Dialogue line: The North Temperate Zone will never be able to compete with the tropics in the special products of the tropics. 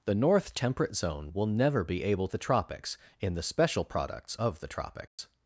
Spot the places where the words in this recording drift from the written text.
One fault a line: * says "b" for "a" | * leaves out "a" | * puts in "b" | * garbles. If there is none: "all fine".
* leaves out "to compete with"